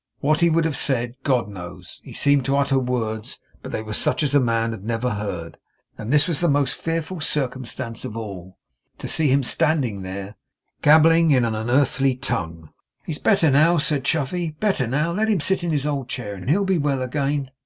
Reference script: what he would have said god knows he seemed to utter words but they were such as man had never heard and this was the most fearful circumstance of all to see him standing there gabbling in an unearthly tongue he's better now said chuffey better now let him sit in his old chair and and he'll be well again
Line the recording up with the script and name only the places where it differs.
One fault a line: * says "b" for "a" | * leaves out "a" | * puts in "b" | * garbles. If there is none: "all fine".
all fine